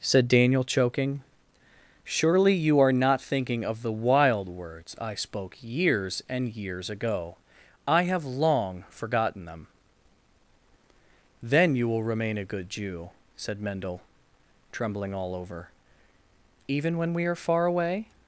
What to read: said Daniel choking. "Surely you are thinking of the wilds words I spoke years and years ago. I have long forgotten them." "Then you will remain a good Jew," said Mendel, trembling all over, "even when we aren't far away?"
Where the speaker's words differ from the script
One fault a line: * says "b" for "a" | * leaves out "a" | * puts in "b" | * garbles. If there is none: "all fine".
* puts in "not"
* says "wild" for "wilds"
* says "are" for "aren't"